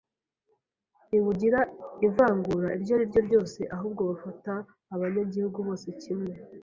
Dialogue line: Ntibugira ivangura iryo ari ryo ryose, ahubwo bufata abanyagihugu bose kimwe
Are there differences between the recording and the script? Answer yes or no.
no